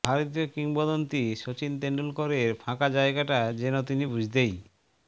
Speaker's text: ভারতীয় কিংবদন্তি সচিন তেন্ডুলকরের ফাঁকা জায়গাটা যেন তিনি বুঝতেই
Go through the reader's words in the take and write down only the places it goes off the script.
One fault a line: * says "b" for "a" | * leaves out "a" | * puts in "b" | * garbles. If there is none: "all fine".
all fine